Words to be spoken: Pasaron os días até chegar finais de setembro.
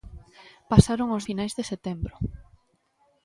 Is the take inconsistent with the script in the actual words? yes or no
yes